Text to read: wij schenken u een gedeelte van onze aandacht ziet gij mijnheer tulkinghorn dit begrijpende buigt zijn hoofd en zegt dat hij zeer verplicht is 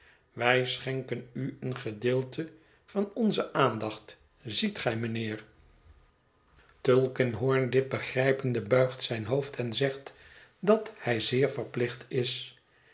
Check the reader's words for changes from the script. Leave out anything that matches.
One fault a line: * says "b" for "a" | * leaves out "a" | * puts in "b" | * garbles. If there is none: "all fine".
all fine